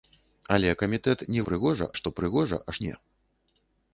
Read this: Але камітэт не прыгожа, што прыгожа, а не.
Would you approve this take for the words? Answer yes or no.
yes